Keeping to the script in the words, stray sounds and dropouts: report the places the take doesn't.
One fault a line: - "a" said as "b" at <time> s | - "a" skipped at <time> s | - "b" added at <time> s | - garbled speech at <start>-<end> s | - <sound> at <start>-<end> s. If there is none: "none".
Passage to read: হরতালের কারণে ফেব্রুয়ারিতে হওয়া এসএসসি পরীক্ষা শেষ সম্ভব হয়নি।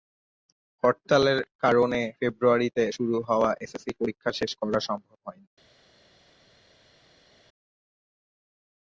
- "শুরু" added at 3.0 s
- "করা" added at 4.6 s